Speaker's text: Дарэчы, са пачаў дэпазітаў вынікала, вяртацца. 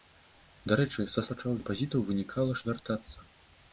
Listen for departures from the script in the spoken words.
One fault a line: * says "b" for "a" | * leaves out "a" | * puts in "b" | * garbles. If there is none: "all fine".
all fine